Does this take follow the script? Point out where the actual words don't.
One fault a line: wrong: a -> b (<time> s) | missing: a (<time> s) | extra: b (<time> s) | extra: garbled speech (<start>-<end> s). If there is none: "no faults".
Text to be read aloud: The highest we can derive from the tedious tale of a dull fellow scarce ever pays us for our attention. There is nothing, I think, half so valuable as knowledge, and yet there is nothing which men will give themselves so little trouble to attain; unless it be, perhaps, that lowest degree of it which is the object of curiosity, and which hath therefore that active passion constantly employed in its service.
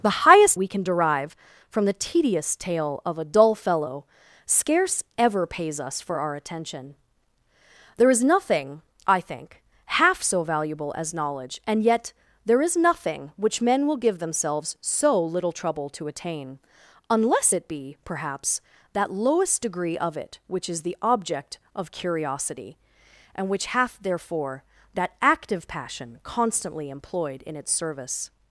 no faults